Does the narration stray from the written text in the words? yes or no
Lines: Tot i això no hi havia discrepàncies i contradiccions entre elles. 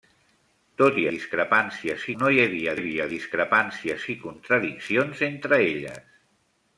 yes